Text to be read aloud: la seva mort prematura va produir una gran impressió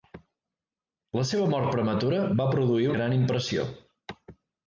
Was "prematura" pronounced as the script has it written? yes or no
yes